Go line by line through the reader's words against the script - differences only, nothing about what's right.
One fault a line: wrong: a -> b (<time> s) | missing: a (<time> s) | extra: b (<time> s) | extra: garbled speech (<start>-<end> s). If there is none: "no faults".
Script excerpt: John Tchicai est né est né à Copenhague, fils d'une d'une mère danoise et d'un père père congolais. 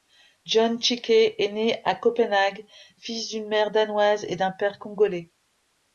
missing: est né (1.8 s)
missing: d'une (3.5 s)
missing: père (4.8 s)